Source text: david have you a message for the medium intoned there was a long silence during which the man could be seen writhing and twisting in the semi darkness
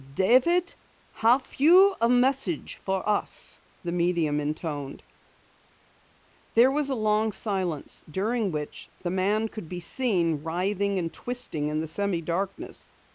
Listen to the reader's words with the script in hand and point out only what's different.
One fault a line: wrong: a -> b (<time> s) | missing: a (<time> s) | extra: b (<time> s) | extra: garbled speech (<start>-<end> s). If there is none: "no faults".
extra: us (3.1 s)